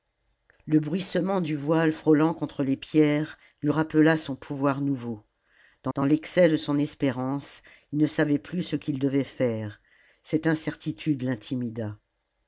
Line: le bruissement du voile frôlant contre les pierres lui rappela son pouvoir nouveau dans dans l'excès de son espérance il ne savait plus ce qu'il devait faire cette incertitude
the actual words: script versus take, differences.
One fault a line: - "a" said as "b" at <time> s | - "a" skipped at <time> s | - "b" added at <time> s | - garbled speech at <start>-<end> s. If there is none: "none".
none